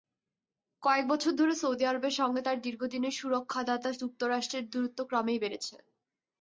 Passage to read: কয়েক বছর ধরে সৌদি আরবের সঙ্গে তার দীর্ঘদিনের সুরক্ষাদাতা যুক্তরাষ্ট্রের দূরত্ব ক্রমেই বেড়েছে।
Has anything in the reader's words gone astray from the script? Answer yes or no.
no